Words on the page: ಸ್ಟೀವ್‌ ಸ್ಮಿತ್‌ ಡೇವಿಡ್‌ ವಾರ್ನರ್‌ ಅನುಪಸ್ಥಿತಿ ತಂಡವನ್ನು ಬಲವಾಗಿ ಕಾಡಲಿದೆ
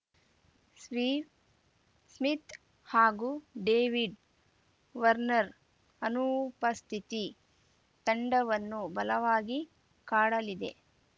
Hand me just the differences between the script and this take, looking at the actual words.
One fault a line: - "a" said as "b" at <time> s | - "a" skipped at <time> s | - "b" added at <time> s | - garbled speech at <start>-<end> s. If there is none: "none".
- "ಹಾಗೂ" added at 2.9 s